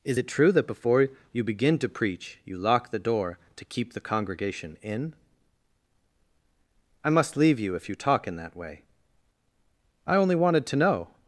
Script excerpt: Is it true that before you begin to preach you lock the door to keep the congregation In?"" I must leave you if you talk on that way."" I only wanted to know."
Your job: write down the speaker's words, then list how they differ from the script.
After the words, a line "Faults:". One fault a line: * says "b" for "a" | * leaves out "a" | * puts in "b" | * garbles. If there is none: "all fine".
Is it true that before you begin to preach you lock the door to keep the congregation In?"" I must leave you if you talk in that way."" I only wanted to know."
Faults:
* says "in" for "on"